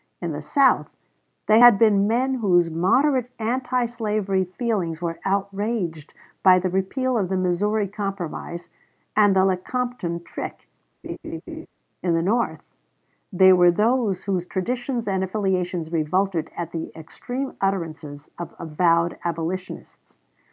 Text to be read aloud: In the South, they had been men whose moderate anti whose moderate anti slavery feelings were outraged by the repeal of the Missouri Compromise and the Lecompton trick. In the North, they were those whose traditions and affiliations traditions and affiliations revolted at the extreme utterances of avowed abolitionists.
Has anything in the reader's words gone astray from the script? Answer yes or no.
yes